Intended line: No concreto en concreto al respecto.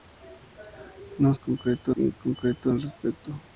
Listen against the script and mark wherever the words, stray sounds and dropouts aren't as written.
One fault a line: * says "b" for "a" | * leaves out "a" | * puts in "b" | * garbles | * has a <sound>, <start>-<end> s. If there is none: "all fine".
all fine